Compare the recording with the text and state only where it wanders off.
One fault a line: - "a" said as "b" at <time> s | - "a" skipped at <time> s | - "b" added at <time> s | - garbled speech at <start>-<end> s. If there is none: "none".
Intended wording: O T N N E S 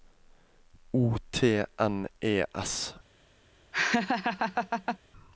- "N" skipped at 2.1 s